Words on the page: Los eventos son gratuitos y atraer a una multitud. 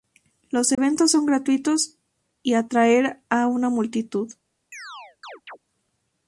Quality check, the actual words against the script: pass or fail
pass